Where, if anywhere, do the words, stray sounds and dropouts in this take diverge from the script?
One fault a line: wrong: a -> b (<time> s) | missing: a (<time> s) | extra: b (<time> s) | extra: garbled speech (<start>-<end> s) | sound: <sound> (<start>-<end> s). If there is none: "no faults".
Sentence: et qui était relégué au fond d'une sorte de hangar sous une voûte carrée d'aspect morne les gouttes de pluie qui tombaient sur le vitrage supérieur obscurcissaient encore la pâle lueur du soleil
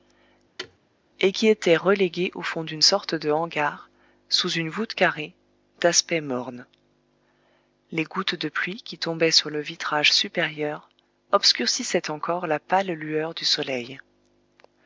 sound: thud (0.6-0.8 s)